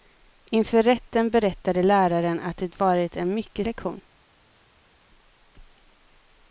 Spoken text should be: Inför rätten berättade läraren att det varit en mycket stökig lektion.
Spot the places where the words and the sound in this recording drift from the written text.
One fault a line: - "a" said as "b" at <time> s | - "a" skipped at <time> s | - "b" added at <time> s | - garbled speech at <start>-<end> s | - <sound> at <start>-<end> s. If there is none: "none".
- "stökig" skipped at 3.7 s